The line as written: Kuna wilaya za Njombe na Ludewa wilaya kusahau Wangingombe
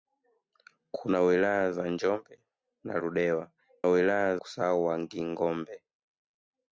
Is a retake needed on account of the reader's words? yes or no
no